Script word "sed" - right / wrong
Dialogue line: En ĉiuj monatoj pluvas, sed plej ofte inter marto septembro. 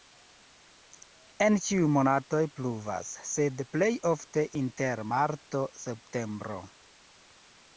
right